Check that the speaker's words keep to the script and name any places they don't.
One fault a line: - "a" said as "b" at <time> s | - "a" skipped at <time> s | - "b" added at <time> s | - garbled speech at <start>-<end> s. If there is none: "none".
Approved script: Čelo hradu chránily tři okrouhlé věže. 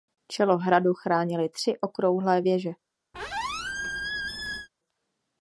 none